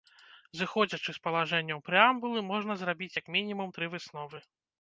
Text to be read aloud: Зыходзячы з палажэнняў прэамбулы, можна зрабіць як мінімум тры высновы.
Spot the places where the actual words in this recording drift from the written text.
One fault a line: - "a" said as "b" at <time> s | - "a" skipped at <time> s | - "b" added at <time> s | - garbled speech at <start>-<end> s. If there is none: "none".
none